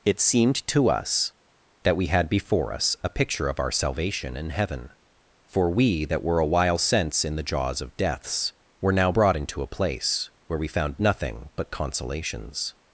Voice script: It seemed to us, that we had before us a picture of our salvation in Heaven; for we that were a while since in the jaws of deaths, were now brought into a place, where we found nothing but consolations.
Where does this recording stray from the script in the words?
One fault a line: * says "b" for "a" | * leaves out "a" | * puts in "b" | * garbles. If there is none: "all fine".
all fine